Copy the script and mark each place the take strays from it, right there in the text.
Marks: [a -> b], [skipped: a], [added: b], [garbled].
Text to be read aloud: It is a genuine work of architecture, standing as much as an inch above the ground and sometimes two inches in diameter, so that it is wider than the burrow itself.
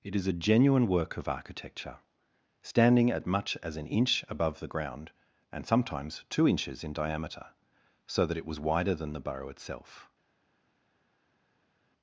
It is a genuine work of architecture, standing [as -> at] much as an inch above the ground and sometimes two inches in diameter, so that it [is -> was] wider than the burrow itself.